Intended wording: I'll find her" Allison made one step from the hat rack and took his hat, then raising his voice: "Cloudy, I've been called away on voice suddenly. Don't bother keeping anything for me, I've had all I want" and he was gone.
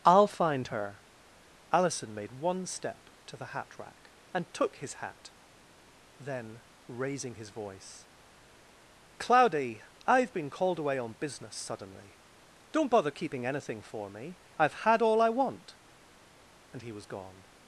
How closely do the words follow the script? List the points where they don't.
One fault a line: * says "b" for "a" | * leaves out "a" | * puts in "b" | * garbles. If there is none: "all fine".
* says "to" for "from"
* says "business" for "voice"